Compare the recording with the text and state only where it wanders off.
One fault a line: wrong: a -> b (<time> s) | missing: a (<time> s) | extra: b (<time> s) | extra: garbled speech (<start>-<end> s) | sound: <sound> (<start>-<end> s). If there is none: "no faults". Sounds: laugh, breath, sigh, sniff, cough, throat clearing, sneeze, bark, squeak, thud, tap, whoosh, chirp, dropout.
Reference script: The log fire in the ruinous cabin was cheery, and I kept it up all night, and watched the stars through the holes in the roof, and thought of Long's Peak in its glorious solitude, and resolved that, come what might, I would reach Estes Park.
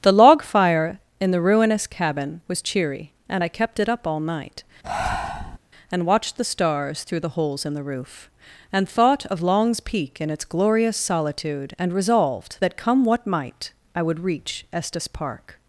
sound: breath (4.8-5.6 s)